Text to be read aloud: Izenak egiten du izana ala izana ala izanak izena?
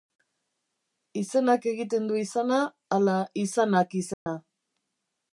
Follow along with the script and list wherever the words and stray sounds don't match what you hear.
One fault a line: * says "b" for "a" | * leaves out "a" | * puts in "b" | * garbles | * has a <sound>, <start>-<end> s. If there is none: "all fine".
* leaves out "izana ala"
* has a dropout, 4.1-4.3 s